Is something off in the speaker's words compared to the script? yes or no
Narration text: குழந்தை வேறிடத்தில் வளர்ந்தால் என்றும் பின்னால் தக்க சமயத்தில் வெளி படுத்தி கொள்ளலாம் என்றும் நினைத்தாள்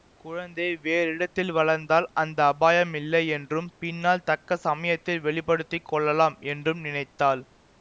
yes